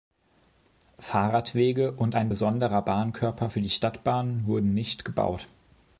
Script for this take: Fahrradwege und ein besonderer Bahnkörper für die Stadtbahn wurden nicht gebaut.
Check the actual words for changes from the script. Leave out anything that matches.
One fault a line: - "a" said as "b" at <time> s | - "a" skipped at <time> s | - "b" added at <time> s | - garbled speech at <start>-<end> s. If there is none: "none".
none